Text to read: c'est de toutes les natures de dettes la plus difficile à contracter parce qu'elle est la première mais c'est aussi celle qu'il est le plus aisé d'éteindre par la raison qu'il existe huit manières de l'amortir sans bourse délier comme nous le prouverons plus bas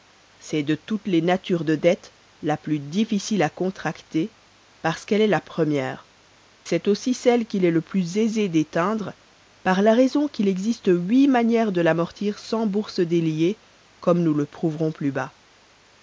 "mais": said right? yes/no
no